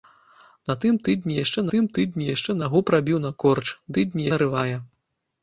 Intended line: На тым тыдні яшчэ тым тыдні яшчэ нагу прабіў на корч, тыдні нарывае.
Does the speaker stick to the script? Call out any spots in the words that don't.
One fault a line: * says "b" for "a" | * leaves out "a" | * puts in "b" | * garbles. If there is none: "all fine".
all fine